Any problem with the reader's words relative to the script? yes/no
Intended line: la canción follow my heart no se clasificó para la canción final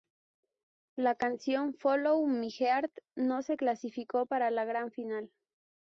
yes